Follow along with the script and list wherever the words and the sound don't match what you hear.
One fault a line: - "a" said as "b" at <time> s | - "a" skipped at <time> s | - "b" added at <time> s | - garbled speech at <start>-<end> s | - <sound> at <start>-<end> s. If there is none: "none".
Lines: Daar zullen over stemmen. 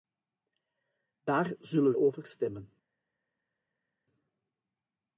none